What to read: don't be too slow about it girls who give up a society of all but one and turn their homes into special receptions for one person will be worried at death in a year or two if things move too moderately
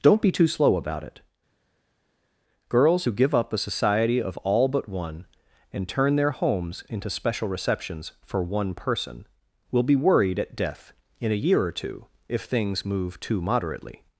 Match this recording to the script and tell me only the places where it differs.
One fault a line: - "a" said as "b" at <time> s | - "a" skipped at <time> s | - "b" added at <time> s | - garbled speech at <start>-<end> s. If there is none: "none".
none